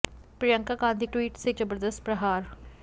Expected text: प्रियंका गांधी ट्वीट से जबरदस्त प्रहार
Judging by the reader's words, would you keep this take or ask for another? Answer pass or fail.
pass